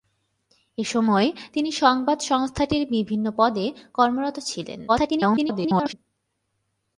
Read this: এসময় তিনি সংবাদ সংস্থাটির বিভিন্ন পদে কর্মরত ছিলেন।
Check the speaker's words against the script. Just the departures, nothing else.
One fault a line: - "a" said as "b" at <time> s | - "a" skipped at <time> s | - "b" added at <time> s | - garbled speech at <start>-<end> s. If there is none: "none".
- garbled speech at 4.9-5.9 s